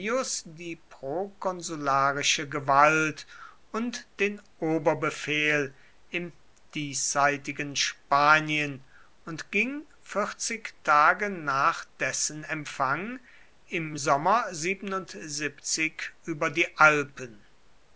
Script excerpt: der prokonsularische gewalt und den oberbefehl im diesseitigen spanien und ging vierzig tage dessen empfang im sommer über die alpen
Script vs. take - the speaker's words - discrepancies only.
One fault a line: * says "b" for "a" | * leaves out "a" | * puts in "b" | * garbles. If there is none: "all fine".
* says "die" for "der"
* puts in "nach"